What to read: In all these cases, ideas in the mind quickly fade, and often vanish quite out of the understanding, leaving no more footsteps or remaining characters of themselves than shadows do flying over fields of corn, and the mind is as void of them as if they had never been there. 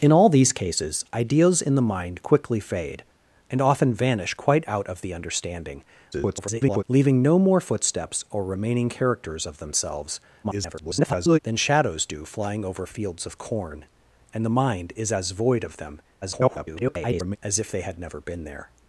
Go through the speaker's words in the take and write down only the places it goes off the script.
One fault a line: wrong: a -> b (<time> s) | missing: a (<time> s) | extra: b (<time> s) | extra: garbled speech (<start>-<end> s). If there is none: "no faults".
extra: garbled speech (6.1-6.8 s)
extra: garbled speech (10.4-11.4 s)
extra: garbled speech (16.2-17.4 s)